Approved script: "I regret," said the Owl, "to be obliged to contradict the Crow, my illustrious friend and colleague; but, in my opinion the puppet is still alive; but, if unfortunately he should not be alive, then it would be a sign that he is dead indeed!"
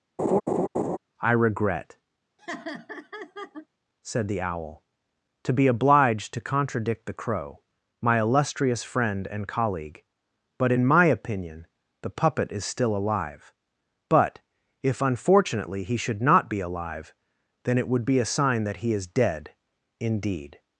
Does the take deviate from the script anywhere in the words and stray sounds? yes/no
yes